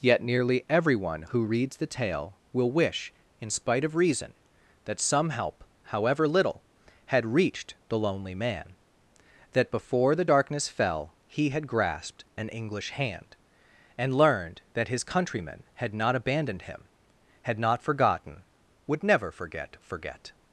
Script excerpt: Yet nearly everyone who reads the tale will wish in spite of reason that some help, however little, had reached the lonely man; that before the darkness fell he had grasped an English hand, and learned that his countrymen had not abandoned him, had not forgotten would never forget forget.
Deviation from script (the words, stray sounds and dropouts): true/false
false